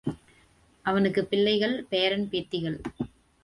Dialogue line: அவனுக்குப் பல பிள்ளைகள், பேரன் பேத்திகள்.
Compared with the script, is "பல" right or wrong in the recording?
wrong